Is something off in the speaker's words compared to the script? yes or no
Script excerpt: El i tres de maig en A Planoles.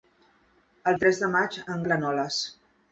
no